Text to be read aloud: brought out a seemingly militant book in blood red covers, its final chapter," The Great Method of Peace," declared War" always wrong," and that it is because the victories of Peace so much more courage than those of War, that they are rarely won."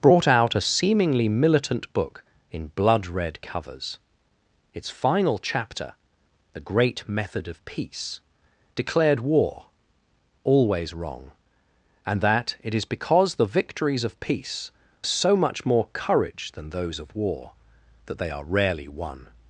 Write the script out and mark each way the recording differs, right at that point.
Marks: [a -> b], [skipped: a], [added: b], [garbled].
brought out a seemingly militant book in blood red covers, its final chapter," The Great Method of Peace," declared War" always wrong," and that it is because the victories of Peace so much more courage than those of War, that they are rarely won."